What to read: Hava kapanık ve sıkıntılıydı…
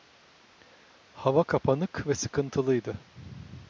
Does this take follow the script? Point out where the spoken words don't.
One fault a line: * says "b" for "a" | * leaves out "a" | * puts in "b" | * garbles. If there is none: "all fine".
all fine